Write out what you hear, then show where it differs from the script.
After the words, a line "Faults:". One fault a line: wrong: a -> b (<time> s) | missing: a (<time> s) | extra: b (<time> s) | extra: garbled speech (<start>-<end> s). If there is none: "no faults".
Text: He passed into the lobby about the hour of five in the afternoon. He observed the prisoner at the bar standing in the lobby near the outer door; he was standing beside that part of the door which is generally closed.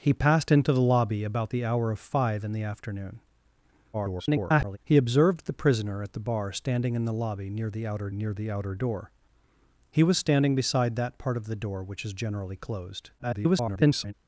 He passed into the lobby about the hour of five in the afternoon. [garbled] He observed the prisoner at the bar standing in the lobby near the outer near the outer door; he was standing beside that part of the door which is generally closed. [garbled]
Faults:
extra: garbled speech (3.9-4.8 s)
extra: near the outer (8.1 s)
extra: garbled speech (13.2-14.1 s)